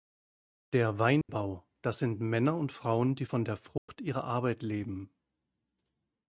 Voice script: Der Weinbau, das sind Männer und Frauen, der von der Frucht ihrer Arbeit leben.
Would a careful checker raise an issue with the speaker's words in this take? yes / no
yes